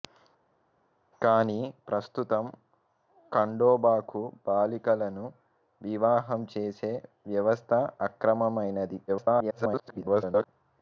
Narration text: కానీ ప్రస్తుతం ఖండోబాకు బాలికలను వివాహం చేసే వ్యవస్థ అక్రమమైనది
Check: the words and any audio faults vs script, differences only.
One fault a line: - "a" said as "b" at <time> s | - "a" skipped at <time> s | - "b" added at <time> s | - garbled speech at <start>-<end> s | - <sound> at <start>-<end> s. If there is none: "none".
- garbled speech at 9.1-10.5 s